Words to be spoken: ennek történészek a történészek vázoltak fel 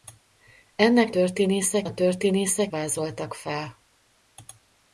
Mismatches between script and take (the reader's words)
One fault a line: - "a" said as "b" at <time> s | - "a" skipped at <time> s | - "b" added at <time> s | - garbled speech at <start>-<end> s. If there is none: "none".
none